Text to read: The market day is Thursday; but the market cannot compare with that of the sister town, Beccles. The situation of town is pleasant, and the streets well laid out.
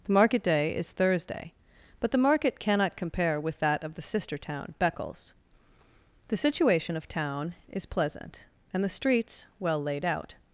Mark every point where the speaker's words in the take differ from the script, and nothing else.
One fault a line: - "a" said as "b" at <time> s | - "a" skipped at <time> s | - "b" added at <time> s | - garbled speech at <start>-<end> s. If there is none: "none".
none